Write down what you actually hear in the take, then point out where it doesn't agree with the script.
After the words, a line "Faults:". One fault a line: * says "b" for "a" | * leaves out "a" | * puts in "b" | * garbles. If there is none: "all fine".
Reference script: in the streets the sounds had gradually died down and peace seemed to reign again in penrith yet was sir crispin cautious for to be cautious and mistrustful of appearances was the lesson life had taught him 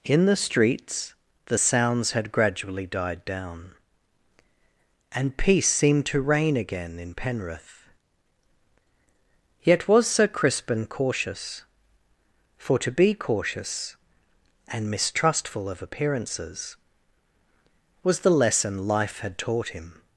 in the streets the sounds had gradually died down and peace seemed to reign again in penrith yet was sir crispin cautious for to be cautious and mistrustful of appearances was the lesson life had taught him
Faults:
all fine